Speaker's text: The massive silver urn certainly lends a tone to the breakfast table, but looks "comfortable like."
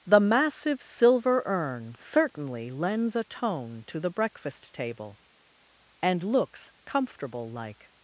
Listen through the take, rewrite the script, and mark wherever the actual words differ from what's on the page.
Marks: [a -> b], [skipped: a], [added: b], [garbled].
The massive silver urn certainly lends a tone to the breakfast table, [but -> and] looks "comfortable like."